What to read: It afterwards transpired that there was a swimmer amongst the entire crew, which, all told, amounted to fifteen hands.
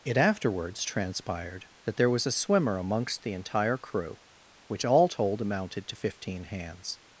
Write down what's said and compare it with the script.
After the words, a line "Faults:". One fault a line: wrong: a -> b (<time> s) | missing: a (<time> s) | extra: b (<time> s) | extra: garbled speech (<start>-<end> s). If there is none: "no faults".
It afterwards transpired that there was a swimmer amongst the entire crew, which, all told, amounted to fifteen hands.
Faults:
no faults